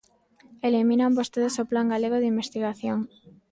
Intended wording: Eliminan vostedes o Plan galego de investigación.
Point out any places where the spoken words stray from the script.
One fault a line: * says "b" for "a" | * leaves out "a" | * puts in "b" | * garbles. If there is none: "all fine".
all fine